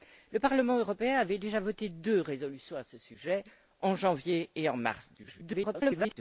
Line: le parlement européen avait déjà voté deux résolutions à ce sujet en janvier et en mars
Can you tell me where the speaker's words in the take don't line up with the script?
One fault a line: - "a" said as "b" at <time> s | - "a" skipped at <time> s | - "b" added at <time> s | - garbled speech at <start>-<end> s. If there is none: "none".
- garbled speech at 5.2-6.2 s